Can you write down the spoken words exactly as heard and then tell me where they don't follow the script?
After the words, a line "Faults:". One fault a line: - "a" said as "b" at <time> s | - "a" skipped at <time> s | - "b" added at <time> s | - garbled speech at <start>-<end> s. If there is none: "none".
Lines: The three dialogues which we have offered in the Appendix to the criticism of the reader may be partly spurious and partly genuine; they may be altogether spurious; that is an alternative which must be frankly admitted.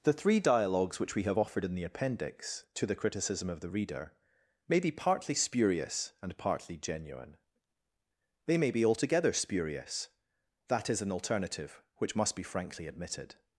The three dialogues which we have offered in the Appendix to the criticism of the reader may be partly spurious and partly genuine; they may be altogether spurious; that is an alternative which must be frankly admitted.
Faults:
none